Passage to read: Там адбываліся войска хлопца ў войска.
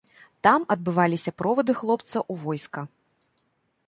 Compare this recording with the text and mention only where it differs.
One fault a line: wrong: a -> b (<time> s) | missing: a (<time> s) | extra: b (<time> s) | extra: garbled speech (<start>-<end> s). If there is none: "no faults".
wrong: войска -> провады (1.4 s)